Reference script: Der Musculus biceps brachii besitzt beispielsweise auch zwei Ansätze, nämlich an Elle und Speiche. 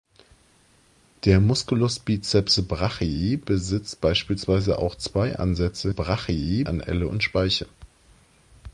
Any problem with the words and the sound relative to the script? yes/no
yes